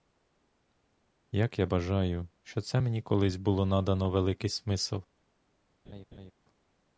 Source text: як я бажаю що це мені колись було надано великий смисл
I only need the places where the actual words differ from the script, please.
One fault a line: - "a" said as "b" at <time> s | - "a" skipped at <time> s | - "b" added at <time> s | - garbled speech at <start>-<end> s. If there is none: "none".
none